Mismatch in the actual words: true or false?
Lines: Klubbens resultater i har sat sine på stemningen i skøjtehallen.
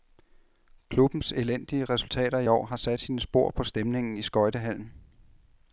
true